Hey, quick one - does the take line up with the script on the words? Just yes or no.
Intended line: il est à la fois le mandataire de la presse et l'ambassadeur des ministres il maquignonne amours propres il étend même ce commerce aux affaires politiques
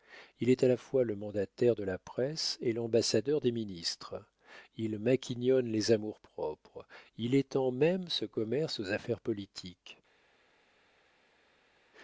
no